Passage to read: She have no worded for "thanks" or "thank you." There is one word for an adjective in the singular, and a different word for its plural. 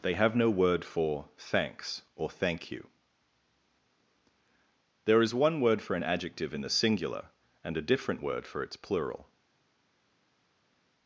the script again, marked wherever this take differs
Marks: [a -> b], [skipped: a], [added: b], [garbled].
[She -> They] have no [worded -> word] for "thanks" or "thank you." There is one word for an adjective in the singular, and a different word for its plural.